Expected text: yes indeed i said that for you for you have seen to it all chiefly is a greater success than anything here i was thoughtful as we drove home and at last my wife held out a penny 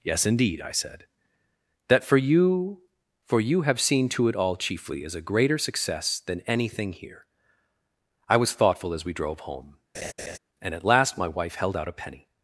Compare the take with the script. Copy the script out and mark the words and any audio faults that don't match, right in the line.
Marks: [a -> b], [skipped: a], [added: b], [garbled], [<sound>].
yes indeed i said that for you for you have seen to it all chiefly is a greater success than anything here i was thoughtful as we drove home [laugh] and at last my wife held out a penny